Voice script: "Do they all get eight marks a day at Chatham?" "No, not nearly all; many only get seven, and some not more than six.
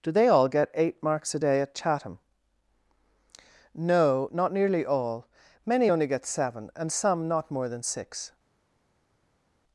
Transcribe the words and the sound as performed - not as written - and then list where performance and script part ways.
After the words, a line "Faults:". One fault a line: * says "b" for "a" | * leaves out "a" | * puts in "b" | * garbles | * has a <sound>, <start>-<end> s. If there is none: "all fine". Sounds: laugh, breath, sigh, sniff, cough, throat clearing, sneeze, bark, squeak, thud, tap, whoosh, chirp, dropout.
"Do they all get eight marks a day at Chatham?" "No, not nearly all; many only get seven, and some not more than six.
Faults:
all fine